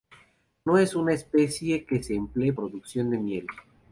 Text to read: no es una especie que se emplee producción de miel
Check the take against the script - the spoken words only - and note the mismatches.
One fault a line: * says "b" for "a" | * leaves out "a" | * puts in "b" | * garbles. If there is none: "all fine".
all fine